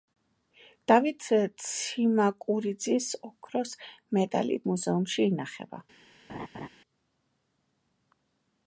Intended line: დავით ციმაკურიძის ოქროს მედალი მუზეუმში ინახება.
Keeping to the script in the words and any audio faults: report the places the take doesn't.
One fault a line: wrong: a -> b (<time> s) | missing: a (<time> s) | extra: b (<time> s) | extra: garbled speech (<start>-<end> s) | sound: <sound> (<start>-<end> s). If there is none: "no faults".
sound: laugh (6.3-6.7 s)